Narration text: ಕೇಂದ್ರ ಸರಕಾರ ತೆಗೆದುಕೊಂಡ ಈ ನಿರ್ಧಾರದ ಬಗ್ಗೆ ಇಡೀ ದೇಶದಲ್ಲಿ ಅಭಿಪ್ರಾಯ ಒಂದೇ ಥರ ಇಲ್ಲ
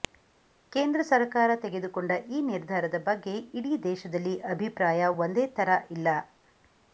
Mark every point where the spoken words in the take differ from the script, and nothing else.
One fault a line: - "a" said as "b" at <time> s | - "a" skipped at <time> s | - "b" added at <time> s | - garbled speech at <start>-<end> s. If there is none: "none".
none